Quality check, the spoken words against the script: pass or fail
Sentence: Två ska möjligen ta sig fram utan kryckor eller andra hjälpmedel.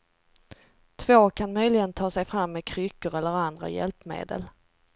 fail